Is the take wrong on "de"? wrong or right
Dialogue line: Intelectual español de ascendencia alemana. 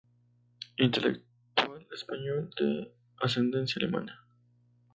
right